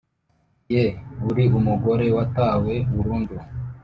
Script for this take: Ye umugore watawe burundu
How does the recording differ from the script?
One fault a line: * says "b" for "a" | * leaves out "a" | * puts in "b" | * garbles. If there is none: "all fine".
* puts in "uri"